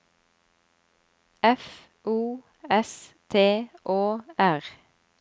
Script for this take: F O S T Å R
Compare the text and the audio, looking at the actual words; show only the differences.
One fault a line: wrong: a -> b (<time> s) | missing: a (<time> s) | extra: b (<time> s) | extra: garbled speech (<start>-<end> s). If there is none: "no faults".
no faults